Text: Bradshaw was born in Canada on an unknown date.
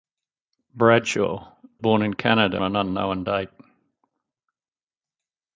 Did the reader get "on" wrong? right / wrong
wrong